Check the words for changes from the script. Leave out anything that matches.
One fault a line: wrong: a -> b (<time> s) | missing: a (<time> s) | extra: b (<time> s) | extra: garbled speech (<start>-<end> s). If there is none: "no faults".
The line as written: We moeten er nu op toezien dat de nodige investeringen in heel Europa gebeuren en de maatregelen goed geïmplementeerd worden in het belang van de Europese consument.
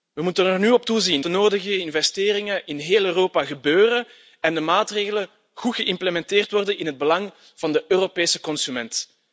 missing: dat (1.2 s)